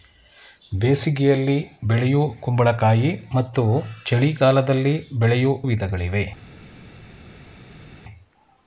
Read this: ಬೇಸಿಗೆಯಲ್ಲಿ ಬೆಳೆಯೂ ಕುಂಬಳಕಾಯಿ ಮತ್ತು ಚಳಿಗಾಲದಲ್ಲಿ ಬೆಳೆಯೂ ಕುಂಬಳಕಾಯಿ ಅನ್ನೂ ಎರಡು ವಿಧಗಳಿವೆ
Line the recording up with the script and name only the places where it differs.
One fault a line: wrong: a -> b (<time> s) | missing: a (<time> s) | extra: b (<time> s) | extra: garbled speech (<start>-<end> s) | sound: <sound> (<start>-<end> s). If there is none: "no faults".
missing: ಕುಂಬಳಕಾಯಿ ಅನ್ನೂ ಎರಡು (5.5 s)